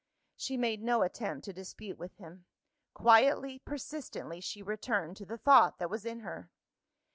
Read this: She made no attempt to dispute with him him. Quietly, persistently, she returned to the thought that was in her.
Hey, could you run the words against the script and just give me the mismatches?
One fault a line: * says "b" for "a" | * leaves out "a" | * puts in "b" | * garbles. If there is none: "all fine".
* leaves out "him"